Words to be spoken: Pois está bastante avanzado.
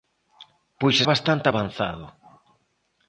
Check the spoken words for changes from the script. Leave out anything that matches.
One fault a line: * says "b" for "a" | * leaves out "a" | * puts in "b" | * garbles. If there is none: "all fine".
* leaves out "está"